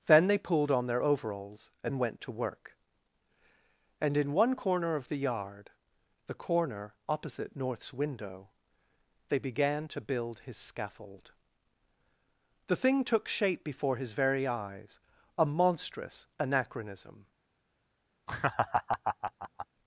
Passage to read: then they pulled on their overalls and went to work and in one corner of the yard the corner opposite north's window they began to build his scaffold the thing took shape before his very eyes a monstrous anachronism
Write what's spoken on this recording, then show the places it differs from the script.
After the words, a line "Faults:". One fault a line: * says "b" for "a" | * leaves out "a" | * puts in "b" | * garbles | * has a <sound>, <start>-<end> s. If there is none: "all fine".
then they pulled on their overalls and went to work and in one corner of the yard the corner opposite north's window they began to build his scaffold the thing took shape before his very eyes a monstrous anachronism
Faults:
* has a laugh, 18.3-19.7 s